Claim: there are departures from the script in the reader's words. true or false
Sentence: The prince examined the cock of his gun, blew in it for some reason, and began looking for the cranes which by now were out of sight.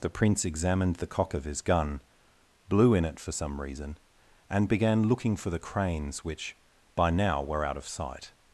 false